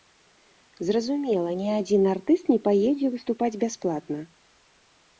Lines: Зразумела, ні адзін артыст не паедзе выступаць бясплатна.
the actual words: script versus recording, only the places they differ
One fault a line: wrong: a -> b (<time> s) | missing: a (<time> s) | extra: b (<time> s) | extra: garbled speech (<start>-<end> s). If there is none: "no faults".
no faults